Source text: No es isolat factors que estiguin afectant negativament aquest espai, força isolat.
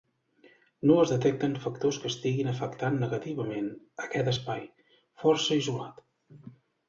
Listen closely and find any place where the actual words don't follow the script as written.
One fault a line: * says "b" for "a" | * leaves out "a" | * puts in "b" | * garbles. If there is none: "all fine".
* says "detecten" for "isolat"